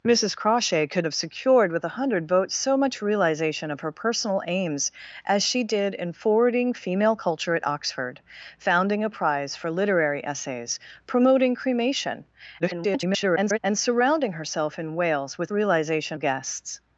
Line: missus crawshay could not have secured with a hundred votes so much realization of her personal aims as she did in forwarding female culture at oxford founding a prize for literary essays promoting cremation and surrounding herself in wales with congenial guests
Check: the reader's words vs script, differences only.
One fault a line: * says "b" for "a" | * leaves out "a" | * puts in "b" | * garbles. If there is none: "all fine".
* leaves out "not"
* garbles
* says "realization" for "congenial"